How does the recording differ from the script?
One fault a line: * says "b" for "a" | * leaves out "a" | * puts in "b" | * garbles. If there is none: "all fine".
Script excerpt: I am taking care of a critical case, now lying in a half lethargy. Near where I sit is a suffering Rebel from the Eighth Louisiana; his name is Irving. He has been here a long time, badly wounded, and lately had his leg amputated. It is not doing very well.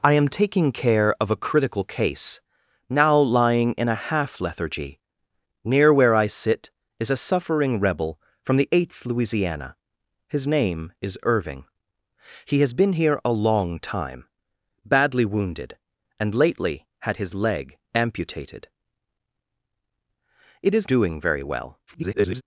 * leaves out "not"
* garbles